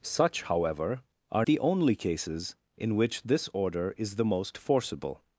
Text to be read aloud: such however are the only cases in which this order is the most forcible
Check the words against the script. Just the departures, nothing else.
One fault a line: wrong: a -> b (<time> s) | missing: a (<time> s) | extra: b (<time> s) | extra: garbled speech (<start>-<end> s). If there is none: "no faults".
no faults